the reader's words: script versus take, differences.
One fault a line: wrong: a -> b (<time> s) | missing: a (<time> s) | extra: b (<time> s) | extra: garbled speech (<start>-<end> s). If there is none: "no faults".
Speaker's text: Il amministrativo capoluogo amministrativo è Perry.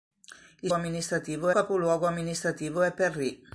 no faults